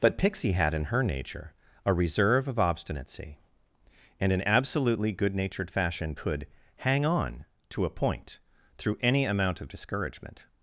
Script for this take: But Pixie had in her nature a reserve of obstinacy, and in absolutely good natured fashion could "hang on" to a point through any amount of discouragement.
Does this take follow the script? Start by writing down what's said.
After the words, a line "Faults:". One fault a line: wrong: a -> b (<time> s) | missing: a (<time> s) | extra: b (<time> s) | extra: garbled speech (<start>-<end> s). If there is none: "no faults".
But Pixie had in her nature a reserve of obstinacy, and in absolutely good natured fashion could "hang on" to a point through any amount of discouragement.
Faults:
no faults